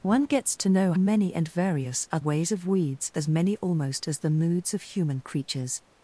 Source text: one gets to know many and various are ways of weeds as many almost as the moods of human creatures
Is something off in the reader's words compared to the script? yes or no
no